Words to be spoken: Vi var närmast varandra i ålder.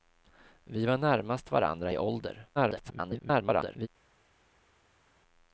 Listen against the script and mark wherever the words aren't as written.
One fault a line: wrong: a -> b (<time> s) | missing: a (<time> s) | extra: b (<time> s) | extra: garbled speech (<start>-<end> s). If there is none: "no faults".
extra: garbled speech (2.6-3.9 s)